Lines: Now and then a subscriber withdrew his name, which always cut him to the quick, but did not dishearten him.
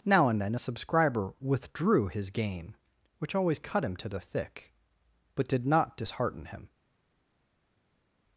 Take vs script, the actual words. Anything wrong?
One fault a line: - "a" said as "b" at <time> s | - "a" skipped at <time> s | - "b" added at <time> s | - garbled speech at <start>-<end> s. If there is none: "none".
- "name" said as "game" at 2.3 s
- "quick" said as "thick" at 4.2 s